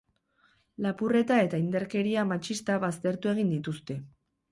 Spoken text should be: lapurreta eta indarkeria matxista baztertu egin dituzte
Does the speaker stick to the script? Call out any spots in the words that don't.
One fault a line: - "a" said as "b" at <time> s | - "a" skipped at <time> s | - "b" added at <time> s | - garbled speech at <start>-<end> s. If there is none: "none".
none